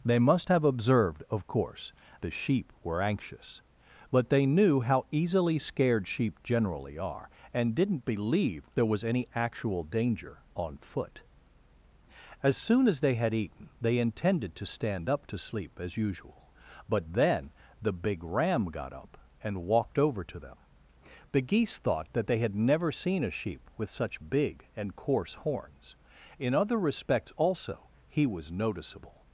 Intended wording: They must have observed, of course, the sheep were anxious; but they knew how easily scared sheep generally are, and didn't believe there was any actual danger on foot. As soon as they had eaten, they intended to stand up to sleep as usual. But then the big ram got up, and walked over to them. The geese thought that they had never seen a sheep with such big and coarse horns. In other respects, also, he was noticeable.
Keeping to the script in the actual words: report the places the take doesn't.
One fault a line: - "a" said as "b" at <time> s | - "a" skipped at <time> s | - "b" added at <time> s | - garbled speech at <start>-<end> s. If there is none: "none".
none